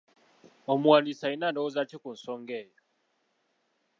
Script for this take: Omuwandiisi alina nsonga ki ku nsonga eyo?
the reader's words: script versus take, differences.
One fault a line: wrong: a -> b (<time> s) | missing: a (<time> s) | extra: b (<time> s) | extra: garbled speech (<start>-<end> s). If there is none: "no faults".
wrong: nsonga -> ndowooza (1.5 s)